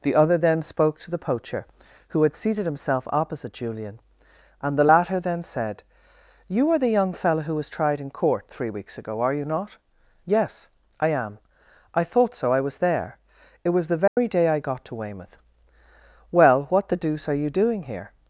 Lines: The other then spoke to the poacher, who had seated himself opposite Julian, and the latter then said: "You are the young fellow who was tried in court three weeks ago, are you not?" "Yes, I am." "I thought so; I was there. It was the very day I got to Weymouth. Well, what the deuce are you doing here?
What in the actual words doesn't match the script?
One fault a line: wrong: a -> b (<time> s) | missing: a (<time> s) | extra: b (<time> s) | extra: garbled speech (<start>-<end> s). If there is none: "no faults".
no faults